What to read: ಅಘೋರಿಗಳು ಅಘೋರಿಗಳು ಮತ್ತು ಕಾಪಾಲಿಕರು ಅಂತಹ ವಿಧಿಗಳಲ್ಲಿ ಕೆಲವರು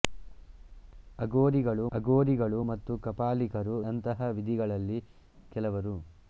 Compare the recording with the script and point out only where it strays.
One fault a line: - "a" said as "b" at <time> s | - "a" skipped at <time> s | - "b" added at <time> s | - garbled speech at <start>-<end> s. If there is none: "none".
none